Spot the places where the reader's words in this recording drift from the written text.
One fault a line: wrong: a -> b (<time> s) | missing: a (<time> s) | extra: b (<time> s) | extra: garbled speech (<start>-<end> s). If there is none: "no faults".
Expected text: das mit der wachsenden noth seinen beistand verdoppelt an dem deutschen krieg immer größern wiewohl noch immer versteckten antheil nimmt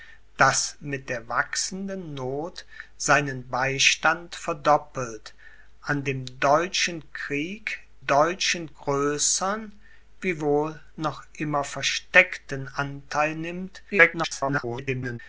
wrong: immer -> deutschen (8.1 s)
extra: garbled speech (13.9-15.2 s)